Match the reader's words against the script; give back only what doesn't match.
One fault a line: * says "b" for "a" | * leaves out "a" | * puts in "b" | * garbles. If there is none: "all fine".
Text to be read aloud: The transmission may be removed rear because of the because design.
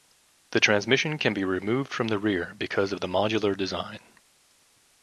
* says "can" for "may"
* puts in "from the"
* says "modular" for "because"